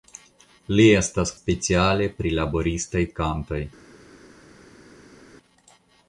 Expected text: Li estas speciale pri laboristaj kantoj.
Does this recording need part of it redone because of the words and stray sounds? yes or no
no